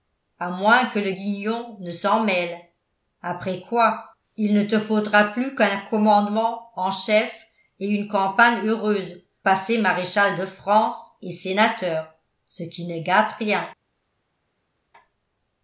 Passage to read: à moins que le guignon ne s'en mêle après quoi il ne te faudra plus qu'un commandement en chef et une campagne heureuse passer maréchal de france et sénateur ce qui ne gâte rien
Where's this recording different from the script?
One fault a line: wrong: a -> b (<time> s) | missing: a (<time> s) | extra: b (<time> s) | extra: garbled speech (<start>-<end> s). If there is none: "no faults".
no faults